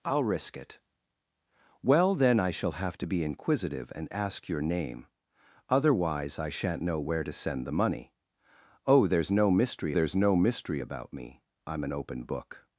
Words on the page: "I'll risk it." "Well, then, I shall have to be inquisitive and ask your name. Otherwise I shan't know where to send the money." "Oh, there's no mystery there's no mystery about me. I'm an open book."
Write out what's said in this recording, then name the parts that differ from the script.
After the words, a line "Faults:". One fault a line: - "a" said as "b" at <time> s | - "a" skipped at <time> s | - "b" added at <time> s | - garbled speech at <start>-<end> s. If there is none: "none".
"I'll risk it." "Well, then, I shall have to be inquisitive and ask your name. Otherwise I shan't know where to send the money." "Oh, there's no mystery there's no mystery about me. I'm an open book."
Faults:
none